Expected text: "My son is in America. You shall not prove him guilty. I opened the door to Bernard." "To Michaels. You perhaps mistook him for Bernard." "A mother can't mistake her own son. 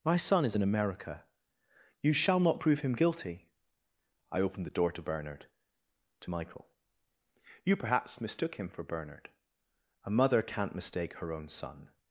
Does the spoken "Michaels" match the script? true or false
false